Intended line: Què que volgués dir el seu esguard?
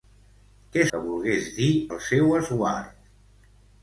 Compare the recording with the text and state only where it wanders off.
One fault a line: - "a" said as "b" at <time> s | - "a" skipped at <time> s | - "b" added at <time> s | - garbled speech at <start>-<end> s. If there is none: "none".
none